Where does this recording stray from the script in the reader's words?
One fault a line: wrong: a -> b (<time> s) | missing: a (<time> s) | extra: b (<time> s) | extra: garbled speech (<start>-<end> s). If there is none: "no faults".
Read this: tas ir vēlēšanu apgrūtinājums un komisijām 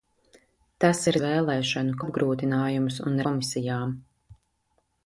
no faults